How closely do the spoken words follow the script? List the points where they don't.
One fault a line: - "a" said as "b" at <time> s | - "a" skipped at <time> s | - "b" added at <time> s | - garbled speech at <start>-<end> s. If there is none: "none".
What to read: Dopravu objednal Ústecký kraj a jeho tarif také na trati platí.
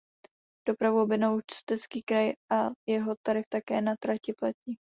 none